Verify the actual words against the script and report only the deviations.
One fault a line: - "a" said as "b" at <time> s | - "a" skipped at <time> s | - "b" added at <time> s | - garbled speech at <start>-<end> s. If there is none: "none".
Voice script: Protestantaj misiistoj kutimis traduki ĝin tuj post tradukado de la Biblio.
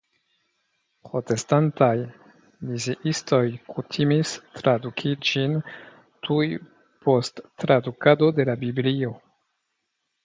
none